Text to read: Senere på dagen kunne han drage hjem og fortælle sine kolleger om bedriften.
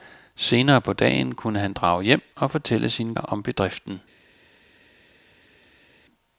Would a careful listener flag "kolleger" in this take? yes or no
yes